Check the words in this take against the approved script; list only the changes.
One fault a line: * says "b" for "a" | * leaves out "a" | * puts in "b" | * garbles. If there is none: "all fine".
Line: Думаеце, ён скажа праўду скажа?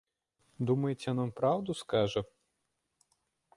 * says "вам" for "скажа"